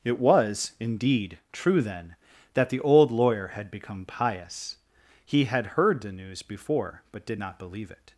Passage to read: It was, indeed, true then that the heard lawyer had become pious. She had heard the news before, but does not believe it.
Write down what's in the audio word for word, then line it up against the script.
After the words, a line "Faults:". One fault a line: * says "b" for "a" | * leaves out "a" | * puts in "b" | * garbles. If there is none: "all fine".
It was, indeed, true then that the old lawyer had become pious. He had heard the news before, but did not believe it.
Faults:
* says "old" for "heard"
* says "He" for "She"
* says "did" for "does"